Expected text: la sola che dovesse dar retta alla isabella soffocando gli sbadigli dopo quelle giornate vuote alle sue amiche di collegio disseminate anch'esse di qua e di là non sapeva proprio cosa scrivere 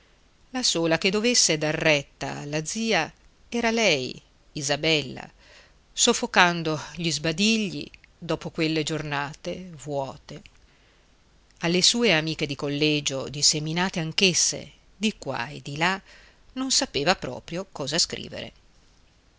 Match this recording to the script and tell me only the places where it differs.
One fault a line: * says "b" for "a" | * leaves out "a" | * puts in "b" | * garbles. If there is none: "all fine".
* puts in "zia era lei"